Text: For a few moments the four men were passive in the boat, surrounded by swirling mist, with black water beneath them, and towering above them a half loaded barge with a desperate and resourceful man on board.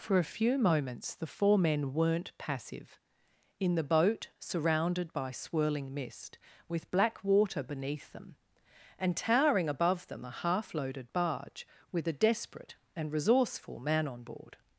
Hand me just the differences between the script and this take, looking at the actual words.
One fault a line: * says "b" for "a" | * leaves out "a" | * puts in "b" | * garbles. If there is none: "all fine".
* says "weren't" for "were"